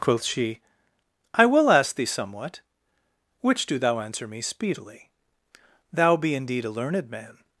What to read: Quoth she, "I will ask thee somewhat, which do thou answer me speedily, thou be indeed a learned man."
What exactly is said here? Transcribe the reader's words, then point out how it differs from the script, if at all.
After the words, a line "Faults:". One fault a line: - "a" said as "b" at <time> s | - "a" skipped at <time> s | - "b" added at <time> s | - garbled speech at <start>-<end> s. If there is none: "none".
Quoth she, "I will ask thee somewhat, which do thou answer me speedily, thou be indeed a learned man."
Faults:
none